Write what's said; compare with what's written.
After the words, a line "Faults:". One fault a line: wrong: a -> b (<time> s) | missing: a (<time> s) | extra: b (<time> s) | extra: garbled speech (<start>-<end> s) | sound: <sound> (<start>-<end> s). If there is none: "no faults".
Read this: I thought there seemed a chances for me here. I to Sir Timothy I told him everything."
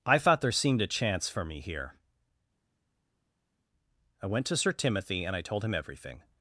I thought there seemed a chance for me here. I went to Sir Timothy and I told him everything."
Faults:
wrong: chances -> chance (0.9 s)
extra: went (4.3 s)
extra: and (5.2 s)